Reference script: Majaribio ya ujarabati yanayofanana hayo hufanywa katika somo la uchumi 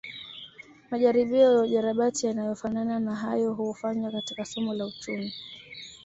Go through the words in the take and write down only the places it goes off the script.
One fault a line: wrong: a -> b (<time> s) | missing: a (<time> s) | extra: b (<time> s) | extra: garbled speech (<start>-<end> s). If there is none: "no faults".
extra: na (3.0 s)